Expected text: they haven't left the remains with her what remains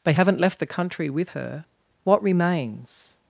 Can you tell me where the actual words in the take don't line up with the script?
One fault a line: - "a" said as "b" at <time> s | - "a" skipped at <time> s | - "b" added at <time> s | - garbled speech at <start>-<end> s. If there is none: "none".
- "remains" said as "country" at 0.7 s